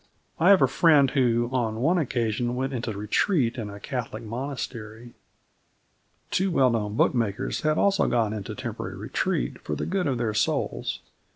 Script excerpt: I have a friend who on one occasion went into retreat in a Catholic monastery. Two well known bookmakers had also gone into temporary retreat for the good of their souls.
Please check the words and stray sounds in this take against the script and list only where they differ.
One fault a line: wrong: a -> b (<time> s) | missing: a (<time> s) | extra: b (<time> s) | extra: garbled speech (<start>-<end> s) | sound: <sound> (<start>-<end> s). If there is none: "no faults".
no faults